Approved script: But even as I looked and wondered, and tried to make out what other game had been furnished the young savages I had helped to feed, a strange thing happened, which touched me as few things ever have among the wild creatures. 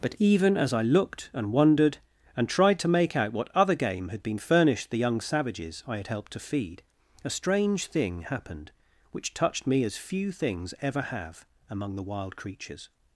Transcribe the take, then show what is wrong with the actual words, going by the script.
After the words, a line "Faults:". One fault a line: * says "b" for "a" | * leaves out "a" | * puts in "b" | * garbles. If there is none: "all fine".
But even as I looked and wondered, and tried to make out what other game had been furnished the young savages I had helped to feed, a strange thing happened, which touched me as few things ever have among the wild creatures.
Faults:
all fine